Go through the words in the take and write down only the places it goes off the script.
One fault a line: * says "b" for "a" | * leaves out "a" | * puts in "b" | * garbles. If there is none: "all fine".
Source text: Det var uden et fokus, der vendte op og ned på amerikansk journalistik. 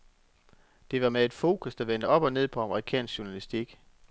* says "med" for "uden"